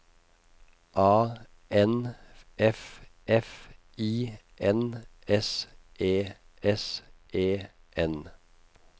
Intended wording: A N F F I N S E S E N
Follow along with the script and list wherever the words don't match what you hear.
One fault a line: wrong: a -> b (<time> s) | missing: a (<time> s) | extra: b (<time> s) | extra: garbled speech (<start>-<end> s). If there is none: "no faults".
no faults